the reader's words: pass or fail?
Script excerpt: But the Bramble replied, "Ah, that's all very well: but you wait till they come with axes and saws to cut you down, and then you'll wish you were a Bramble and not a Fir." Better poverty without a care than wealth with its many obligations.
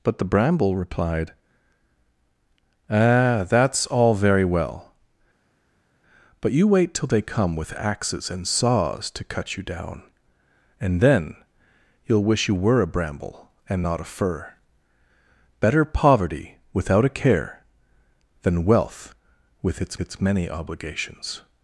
fail